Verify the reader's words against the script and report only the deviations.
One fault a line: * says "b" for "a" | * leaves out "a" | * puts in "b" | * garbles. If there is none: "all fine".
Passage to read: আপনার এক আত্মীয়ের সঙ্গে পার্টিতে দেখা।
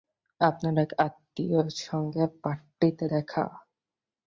all fine